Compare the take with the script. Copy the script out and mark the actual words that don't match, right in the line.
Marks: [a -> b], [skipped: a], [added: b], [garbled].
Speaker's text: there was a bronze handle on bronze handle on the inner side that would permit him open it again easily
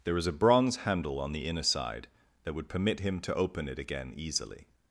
there was a bronze handle on [skipped: bronze handle on] the inner side that would permit him [added: to] open it again easily